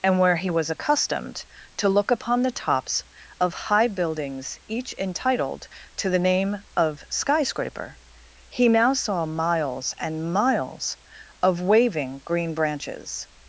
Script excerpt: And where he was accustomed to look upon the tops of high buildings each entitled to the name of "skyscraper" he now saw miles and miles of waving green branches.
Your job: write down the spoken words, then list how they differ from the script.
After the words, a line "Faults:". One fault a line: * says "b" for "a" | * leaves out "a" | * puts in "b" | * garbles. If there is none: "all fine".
And where he was accustomed to look upon the tops of high buildings each entitled to the name of "skyscraper" he now saw miles and miles of waving green branches.
Faults:
all fine